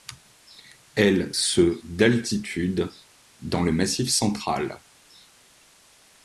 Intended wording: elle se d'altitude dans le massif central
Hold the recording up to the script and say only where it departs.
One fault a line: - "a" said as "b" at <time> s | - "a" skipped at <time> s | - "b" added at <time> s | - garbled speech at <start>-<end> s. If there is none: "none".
none